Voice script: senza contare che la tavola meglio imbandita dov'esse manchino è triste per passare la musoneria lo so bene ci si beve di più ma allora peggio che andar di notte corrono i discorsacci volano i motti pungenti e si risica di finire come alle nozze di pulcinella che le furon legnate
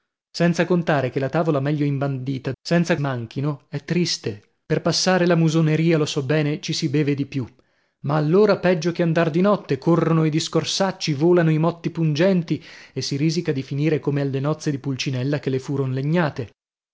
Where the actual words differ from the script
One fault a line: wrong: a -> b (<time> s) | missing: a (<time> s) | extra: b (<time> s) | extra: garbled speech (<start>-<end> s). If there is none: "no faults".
wrong: dov'esse -> senza (2.6 s)